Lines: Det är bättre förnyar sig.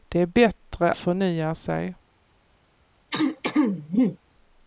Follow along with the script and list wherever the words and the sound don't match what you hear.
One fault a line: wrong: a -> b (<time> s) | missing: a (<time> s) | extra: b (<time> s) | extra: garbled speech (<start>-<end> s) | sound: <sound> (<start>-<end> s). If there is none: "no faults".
sound: throat clearing (3.1-4.2 s)